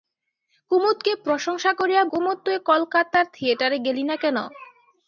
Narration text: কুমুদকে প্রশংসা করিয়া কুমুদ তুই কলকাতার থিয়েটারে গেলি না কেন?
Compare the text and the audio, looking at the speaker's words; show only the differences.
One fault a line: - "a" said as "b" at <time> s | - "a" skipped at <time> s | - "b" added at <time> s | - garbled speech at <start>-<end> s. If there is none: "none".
none